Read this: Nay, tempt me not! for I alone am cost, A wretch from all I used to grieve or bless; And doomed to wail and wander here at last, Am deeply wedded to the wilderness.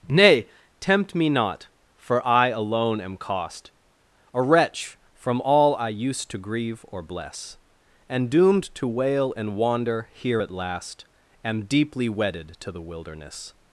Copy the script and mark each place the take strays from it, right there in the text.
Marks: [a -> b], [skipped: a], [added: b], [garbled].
Nay, tempt me not! for I alone am cost, A wretch from all I used to grieve or bless; And doomed to wail and wander here at last, Am deeply wedded to the wilderness.